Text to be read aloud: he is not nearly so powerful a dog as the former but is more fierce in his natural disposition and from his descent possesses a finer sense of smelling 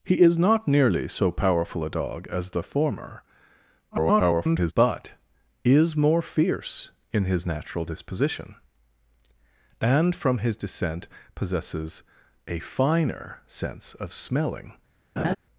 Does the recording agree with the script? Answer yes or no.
no